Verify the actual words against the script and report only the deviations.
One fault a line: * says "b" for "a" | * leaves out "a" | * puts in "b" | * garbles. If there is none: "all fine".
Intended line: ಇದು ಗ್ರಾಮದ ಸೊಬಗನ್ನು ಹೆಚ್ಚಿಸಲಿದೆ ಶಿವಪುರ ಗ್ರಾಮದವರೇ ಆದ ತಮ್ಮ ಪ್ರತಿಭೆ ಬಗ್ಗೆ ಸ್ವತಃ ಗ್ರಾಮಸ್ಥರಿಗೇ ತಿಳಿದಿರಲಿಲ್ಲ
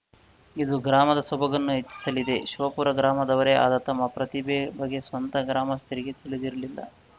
all fine